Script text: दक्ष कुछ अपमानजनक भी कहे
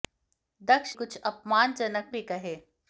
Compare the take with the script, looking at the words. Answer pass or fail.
pass